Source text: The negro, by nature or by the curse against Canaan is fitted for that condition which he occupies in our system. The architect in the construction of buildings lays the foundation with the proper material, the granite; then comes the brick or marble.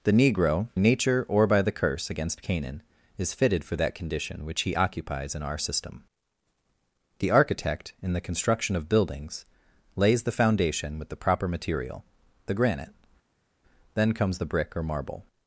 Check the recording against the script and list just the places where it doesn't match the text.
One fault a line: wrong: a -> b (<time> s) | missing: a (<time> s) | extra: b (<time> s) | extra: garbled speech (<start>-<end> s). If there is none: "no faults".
missing: by (0.7 s)